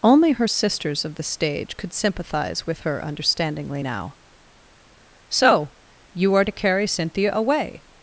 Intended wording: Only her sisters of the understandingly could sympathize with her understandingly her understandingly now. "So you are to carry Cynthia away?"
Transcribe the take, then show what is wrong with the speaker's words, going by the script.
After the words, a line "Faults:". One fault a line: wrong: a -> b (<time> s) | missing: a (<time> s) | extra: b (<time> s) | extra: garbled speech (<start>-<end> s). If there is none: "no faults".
Only her sisters of the stage could sympathize with her understandingly now. "So you are to carry Cynthia away?"
Faults:
wrong: understandingly -> stage (1.2 s)
missing: her understandingly (3.8 s)